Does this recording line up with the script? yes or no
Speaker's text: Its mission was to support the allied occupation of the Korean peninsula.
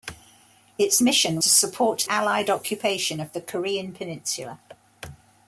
no